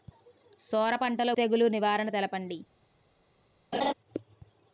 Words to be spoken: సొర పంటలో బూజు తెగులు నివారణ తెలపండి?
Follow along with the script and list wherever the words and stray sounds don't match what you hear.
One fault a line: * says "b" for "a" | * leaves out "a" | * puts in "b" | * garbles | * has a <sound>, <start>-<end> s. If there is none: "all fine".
* leaves out "బూజు"
* has a laugh, 3.7-3.9 s